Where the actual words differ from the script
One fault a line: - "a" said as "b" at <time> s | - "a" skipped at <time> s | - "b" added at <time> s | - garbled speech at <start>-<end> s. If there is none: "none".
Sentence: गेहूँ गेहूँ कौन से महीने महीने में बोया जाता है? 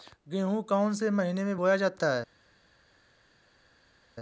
- "गेहूँ" skipped at 0.6 s
- "महीने" skipped at 1.4 s